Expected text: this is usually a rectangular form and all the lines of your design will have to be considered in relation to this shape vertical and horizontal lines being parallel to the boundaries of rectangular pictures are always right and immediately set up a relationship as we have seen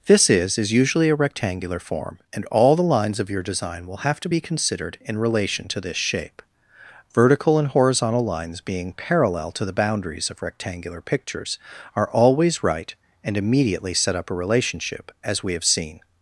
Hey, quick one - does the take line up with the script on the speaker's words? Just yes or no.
no